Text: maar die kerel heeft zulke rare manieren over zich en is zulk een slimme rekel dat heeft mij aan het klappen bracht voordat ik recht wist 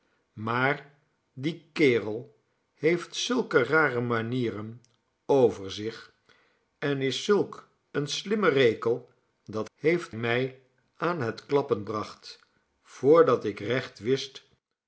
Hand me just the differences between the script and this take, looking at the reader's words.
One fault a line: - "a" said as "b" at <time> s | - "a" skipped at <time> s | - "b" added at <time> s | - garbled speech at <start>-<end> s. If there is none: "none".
none